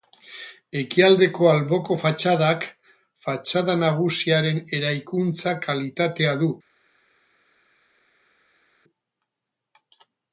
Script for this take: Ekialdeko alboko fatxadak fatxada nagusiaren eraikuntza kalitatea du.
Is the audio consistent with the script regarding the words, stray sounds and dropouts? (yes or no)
yes